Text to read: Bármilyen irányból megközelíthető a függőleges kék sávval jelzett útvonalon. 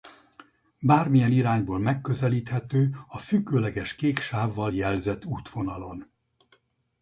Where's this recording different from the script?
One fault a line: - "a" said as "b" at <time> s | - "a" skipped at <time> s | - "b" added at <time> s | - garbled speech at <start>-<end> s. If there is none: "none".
none